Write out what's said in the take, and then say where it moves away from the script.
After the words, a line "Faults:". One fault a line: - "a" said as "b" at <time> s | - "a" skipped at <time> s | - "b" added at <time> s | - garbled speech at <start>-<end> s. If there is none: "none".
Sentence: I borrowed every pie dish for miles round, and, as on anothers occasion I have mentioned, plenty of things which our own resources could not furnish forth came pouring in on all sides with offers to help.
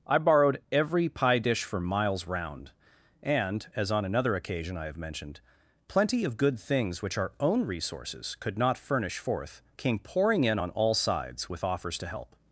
I borrowed every pie dish for miles round, and, as on another occasion I have mentioned, plenty of good things which our own resources could not furnish forth came pouring in on all sides with offers to help.
Faults:
- "anothers" said as "another" at 4.0 s
- "good" added at 6.4 s